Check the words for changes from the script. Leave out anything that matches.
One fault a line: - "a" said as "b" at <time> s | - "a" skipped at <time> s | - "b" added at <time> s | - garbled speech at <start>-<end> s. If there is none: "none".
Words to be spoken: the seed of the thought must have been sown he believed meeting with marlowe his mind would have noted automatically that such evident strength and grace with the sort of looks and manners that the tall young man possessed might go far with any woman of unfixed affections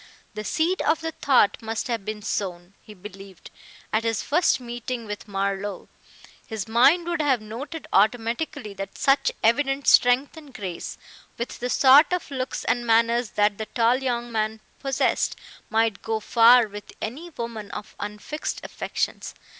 - "at his first" added at 3.9 s